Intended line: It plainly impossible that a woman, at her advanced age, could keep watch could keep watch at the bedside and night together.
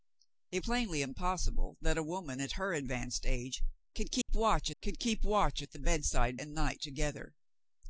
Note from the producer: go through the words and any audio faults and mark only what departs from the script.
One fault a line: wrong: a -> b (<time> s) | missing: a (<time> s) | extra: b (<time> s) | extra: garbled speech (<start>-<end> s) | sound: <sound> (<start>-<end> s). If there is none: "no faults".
sound: dropout (4.2-4.3 s)